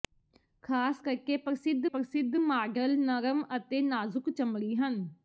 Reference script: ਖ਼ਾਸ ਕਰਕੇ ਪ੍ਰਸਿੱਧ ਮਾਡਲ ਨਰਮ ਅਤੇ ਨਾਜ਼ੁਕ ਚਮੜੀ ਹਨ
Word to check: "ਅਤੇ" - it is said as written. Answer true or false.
true